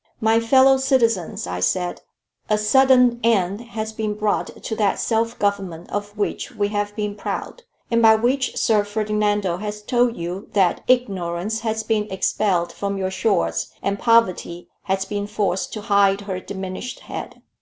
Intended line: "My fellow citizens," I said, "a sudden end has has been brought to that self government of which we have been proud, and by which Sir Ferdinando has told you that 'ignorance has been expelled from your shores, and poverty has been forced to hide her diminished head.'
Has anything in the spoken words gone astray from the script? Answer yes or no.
yes